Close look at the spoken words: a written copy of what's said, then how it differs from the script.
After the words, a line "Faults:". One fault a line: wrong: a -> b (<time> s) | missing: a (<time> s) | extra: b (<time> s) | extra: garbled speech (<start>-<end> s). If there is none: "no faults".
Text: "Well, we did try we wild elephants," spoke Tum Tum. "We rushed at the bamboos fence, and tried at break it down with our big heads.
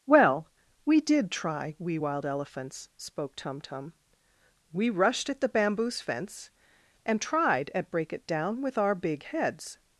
"Well, we did try we wild elephants," spoke Tum Tum. "We rushed at the bamboos fence, and tried at break it down with our big heads.
Faults:
no faults